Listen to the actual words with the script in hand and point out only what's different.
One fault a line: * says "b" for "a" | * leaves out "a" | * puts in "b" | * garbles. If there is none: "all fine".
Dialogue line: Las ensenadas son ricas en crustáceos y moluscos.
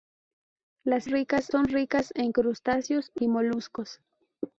* says "ricas" for "ensenadas"